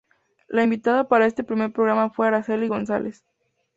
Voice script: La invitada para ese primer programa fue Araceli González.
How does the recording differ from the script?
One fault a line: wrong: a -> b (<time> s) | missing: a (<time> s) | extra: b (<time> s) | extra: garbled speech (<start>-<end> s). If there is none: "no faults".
wrong: ese -> este (1.3 s)